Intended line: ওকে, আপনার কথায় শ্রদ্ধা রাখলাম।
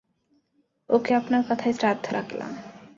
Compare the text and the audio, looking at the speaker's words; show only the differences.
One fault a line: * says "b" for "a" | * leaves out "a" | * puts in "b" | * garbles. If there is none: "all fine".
all fine